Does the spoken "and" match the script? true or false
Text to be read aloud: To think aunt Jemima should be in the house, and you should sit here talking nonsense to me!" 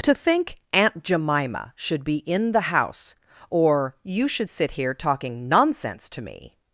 false